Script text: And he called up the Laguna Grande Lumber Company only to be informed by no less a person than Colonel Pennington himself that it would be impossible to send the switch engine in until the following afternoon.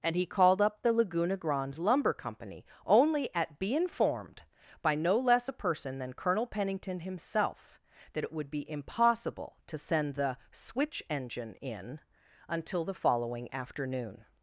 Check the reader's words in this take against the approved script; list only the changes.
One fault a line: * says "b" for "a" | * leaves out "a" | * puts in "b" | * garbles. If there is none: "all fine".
* says "at" for "to"